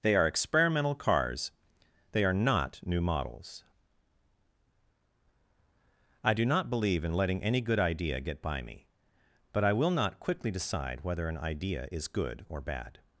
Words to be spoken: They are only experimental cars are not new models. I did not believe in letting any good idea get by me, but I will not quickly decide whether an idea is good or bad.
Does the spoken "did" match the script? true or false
false